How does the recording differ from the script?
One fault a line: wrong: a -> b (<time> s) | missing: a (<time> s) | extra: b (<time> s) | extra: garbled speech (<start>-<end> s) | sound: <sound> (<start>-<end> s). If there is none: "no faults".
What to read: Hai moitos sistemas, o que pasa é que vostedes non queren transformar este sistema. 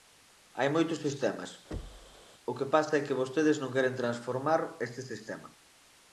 sound: thud (1.7-2.2 s)